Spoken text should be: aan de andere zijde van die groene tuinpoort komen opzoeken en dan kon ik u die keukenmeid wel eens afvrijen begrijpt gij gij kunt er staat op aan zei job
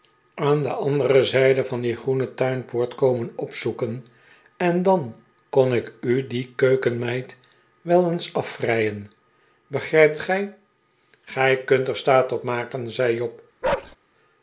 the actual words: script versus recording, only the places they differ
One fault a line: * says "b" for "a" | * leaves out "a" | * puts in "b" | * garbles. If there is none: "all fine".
* says "maken" for "aan"